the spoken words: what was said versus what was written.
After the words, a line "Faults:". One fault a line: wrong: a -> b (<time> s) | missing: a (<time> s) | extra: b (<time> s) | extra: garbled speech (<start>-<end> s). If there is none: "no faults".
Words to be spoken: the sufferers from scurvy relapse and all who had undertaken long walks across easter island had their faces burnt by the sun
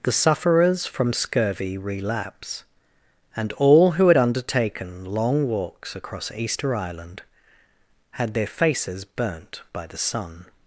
the sufferers from scurvy relapse and all who had undertaken long walks across easter island had their faces burnt by the sun
Faults:
no faults